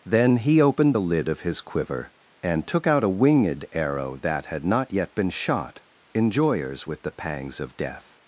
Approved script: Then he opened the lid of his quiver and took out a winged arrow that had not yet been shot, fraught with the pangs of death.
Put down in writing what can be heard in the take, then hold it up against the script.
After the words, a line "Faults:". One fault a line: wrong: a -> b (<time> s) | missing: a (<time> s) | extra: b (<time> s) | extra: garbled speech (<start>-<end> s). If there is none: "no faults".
Then he opened the lid of his quiver and took out a winged arrow that had not yet been shot, enjoyers with the pangs of death.
Faults:
wrong: fraught -> enjoyers (6.1 s)